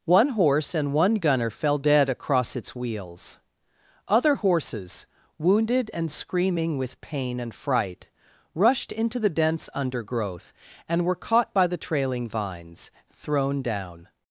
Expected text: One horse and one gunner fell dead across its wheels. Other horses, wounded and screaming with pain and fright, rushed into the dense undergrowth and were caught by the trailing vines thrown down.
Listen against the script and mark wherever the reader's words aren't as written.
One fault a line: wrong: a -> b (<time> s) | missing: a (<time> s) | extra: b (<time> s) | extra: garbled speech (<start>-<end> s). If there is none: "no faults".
no faults